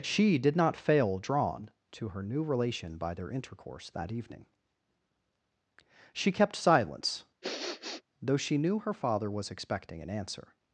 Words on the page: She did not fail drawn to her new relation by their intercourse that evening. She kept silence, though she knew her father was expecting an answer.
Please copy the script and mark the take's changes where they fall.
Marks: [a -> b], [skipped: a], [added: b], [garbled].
She did not fail drawn to her new relation by their intercourse that evening. She kept silence, though she knew her father was expecting an answer.